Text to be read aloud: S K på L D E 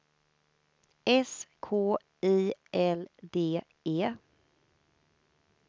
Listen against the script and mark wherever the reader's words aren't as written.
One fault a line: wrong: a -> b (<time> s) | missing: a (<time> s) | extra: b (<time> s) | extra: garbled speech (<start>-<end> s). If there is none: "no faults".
wrong: på -> I (2.2 s)